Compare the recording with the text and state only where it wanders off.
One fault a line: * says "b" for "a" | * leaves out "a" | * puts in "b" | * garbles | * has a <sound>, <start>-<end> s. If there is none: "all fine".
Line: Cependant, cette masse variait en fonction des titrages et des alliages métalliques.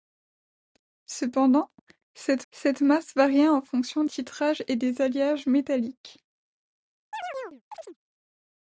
* puts in "cette"
* leaves out "des"
* has a chirp, 7.1-8.0 s